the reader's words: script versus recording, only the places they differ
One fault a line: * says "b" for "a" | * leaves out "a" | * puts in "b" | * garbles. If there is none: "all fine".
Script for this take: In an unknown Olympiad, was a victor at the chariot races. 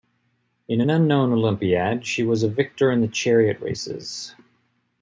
* puts in "she"
* says "in" for "at"